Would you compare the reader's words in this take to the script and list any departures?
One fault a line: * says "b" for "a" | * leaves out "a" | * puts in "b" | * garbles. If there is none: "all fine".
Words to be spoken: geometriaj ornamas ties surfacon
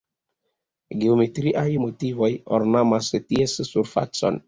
* puts in "motivoj"